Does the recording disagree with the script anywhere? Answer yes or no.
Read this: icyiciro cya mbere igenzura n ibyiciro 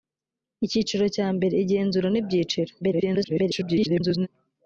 yes